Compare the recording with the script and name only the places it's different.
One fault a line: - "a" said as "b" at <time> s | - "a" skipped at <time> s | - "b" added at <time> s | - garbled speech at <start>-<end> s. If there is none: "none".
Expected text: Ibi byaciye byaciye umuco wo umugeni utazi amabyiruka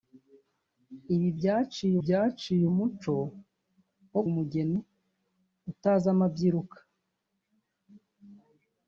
none